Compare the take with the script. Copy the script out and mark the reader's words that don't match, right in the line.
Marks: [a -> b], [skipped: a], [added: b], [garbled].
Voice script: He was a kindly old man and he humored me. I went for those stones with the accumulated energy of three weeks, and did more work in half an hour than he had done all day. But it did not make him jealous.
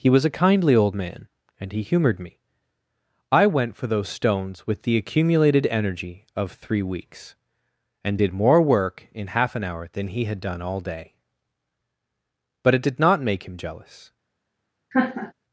He was a kindly old man and he humored me. I went for those stones with the accumulated energy of three weeks, and did more work in half an hour than he had done all day. But it did not make him jealous.